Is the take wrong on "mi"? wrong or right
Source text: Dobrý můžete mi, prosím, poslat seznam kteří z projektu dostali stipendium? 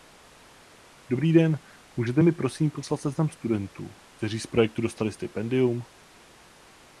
right